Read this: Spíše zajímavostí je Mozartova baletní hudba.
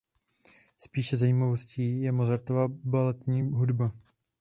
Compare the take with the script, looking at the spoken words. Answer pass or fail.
pass